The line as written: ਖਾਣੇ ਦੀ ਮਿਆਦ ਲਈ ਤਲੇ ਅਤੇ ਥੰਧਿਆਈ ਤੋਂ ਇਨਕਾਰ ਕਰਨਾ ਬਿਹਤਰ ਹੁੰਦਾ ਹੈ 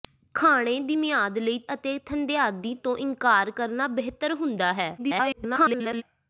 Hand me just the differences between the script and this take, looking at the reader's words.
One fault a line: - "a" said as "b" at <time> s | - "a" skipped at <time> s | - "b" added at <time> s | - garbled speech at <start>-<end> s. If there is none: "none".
- "ਤਲੇ" skipped at 1.6 s
- garbled speech at 5.0-6.0 s